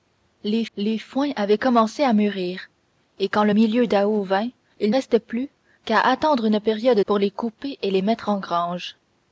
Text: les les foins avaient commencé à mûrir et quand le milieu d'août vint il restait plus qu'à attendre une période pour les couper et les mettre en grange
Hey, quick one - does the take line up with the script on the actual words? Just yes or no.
yes